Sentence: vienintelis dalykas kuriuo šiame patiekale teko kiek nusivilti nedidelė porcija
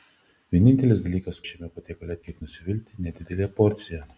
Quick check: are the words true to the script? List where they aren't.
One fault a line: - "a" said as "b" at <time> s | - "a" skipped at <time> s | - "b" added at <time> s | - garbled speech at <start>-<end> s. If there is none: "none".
- "kuriuo" skipped at 1.4 s
- "teko" skipped at 2.2 s